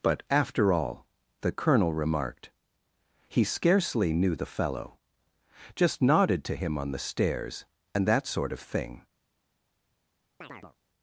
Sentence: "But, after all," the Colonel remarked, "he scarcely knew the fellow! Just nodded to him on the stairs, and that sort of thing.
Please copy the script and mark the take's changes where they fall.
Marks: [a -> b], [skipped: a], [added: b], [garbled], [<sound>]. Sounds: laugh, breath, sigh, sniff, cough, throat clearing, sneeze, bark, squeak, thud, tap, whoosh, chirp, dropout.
"But, after all," the Colonel remarked, "he scarcely knew the fellow! Just nodded to him on the stairs, and that sort of thing. [chirp]